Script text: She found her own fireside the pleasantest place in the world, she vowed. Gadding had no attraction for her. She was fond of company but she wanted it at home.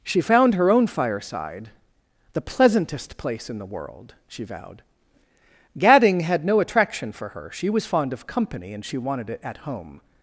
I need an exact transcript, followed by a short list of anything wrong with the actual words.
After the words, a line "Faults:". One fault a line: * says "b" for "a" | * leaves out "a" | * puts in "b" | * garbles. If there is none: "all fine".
She found her own fireside the pleasantest place in the world, she vowed. Gadding had no attraction for her. She was fond of company and she wanted it at home.
Faults:
* says "and" for "but"